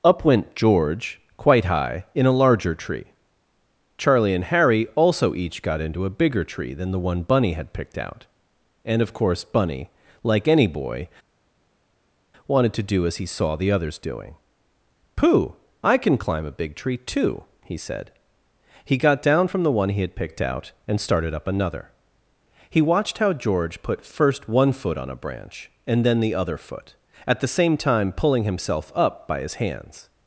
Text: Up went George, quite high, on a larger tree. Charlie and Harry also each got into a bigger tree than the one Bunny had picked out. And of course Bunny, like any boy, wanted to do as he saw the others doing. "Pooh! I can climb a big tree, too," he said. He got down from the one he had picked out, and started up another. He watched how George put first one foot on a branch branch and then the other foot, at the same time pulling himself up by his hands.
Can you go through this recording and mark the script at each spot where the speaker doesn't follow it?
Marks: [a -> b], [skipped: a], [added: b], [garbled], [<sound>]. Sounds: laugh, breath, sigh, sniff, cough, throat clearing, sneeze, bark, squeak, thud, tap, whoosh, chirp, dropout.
Up went George, quite high, [on -> in] a larger tree. Charlie and Harry also each got into a bigger tree than the one Bunny had picked out. And of course Bunny, like any boy, wanted to do as he saw the others doing. "Pooh! I can climb a big tree, too," he said. He got down from the one he had picked out, and started up another. He watched how George put first one foot on a branch [skipped: branch] and then the other foot, at the same time pulling himself up by his hands.